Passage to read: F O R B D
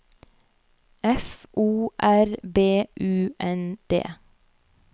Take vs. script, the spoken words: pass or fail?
fail